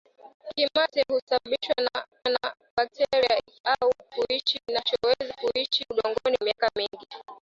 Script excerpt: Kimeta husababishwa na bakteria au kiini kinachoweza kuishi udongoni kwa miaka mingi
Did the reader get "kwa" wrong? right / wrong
wrong